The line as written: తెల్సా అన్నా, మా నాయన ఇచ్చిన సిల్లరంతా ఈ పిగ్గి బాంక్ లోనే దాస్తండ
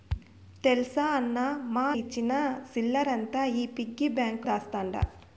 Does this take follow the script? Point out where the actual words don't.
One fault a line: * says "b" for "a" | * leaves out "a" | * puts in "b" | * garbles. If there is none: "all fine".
* leaves out "నాయన"
* leaves out "లోనే"